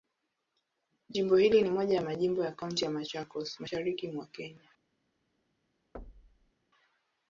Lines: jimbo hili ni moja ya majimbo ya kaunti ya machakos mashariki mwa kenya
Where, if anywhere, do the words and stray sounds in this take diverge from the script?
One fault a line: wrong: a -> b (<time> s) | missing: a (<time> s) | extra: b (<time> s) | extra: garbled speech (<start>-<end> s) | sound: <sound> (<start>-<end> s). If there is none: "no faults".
sound: thud (5.9-6.5 s)